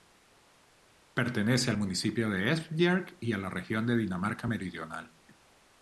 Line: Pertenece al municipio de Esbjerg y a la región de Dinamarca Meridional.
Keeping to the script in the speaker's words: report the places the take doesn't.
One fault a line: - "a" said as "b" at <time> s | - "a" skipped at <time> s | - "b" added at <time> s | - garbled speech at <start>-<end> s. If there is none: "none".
none